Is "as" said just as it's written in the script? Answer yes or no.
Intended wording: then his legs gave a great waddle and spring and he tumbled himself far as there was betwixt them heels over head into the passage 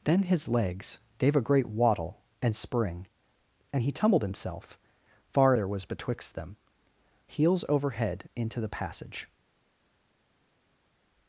no